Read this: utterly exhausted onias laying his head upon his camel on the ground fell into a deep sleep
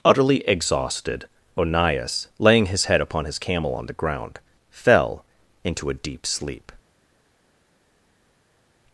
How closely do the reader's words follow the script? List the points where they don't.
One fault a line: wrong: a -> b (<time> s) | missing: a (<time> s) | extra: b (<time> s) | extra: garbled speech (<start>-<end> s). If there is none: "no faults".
no faults